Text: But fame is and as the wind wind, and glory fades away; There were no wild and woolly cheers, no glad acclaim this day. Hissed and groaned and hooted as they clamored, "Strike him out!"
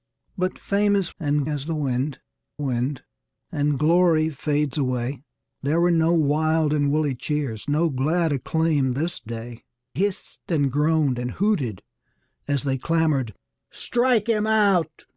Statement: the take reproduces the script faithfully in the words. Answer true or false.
true